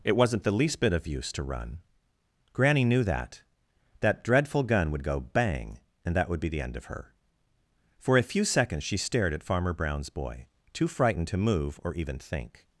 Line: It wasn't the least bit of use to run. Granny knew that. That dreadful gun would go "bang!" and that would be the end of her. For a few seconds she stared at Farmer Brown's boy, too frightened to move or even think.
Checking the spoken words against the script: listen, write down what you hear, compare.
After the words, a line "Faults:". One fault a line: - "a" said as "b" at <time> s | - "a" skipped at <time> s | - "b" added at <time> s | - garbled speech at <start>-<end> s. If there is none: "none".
It wasn't the least bit of use to run. Granny knew that. That dreadful gun would go "bang!" and that would be the end of her. For a few seconds she stared at Farmer Brown's boy, too frightened to move or even think.
Faults:
none